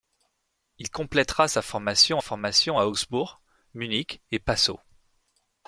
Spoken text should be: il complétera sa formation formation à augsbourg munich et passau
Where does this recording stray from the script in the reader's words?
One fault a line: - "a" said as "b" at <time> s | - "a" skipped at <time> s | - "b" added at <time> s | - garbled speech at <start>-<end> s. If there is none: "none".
none